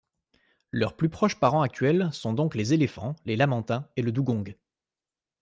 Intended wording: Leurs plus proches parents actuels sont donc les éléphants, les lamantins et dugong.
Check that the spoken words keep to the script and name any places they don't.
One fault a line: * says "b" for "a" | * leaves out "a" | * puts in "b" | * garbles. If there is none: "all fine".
* puts in "le"